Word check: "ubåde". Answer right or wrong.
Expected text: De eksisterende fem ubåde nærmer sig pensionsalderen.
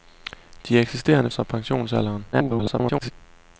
wrong